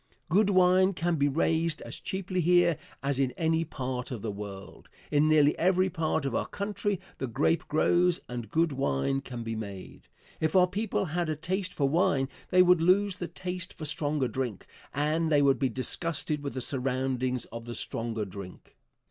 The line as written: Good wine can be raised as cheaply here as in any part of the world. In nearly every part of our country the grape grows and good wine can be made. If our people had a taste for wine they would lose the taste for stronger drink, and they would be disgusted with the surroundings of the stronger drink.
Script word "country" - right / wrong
right